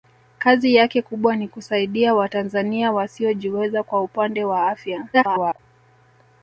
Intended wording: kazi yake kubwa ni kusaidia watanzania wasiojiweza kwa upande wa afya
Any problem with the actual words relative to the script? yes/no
yes